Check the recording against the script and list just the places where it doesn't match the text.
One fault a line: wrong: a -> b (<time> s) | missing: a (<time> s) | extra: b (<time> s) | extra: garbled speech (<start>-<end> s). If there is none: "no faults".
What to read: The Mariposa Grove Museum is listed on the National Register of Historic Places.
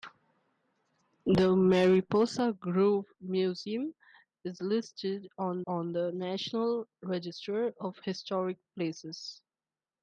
extra: on (5.7 s)